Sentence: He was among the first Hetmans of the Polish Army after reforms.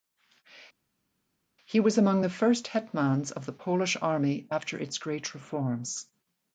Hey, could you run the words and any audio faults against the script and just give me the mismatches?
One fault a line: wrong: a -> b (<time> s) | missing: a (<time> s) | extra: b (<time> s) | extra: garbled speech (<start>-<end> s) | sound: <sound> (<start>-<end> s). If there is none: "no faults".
extra: its great (4.8 s)